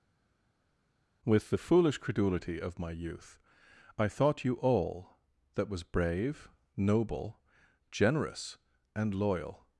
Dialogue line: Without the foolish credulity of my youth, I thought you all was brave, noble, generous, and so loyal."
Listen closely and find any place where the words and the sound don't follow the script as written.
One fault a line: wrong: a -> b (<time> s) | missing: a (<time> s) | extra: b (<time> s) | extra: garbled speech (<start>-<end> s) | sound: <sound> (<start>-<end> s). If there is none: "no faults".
wrong: Without -> With (1.2 s)
extra: that (5.5 s)
missing: so (9.1 s)